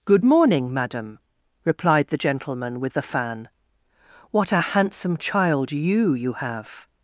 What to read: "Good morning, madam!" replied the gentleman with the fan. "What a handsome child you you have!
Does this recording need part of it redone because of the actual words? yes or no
no